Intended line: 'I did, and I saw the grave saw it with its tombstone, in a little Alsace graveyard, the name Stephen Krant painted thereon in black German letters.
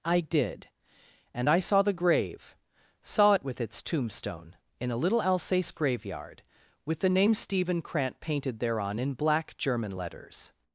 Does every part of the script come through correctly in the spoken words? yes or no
no